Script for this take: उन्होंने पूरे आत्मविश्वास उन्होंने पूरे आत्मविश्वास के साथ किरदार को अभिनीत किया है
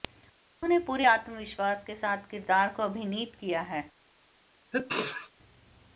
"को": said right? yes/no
yes